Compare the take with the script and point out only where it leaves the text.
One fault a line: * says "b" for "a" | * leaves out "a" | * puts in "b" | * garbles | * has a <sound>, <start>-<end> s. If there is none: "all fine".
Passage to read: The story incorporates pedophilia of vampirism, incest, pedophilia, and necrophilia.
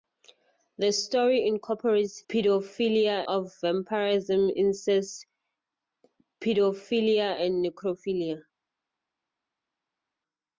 all fine